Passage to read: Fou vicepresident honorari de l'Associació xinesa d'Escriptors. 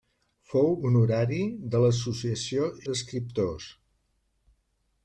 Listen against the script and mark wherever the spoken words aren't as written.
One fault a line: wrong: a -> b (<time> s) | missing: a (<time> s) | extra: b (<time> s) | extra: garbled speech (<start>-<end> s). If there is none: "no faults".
missing: vicepresident (0.7 s)
missing: xinesa (2.7 s)